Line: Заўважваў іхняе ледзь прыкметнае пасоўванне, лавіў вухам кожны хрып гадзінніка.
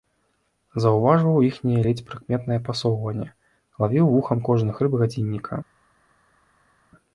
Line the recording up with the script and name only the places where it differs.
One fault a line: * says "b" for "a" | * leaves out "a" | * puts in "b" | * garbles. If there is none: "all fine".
all fine